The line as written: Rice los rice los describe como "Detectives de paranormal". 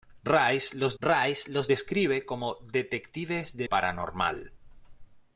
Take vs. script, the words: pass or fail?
pass